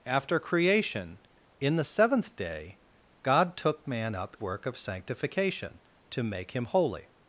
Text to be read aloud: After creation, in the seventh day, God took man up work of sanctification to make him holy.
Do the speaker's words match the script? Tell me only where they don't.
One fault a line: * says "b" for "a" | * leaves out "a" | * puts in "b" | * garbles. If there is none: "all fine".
all fine